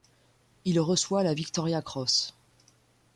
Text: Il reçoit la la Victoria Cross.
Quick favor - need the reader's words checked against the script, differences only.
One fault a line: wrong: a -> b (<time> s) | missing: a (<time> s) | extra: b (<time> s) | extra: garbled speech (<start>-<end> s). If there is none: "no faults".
missing: la (1.4 s)